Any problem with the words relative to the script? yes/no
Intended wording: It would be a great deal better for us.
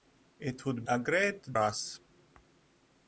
yes